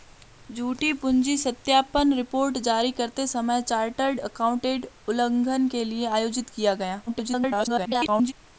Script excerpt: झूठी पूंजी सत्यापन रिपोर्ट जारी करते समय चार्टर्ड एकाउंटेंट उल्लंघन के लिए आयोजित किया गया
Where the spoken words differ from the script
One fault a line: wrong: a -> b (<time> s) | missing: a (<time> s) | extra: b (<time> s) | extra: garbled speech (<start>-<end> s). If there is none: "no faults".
extra: garbled speech (7.1-8.3 s)